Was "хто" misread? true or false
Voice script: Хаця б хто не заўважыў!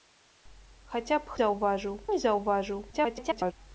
true